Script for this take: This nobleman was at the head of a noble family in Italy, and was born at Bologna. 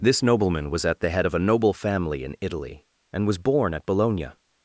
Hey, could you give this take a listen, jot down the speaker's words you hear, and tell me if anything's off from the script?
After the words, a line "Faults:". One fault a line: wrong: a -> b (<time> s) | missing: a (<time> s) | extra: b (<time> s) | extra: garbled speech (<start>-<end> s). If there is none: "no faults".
This nobleman was at the head of a noble family in Italy, and was born at Bologna.
Faults:
no faults